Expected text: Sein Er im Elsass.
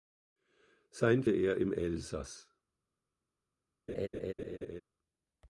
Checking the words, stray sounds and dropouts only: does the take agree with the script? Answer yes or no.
no